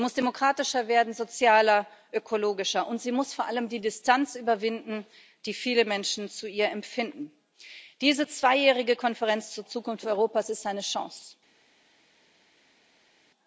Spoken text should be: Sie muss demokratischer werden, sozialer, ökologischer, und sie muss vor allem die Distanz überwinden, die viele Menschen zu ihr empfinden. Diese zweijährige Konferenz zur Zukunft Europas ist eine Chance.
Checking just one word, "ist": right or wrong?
right